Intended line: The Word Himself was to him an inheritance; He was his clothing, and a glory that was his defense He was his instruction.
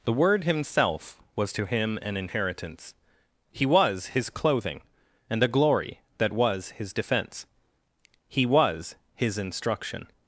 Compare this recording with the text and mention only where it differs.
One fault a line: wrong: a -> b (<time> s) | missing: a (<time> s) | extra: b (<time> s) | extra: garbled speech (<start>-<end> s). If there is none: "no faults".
no faults